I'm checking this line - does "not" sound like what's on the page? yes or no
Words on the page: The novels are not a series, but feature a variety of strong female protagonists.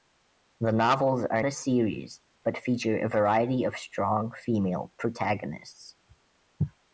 no